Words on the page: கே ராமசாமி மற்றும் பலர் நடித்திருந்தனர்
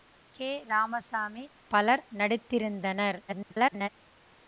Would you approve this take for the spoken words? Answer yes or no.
no